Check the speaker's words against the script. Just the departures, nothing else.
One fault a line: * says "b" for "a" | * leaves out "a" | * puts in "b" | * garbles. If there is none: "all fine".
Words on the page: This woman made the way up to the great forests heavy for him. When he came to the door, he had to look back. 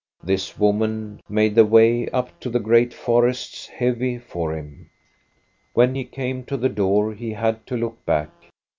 all fine